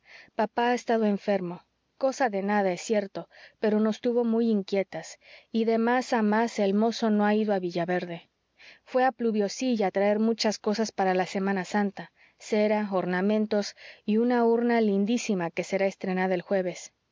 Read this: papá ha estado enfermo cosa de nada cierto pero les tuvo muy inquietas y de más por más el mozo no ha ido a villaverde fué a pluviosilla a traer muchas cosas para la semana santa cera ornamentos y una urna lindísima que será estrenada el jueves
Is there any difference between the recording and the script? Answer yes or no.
yes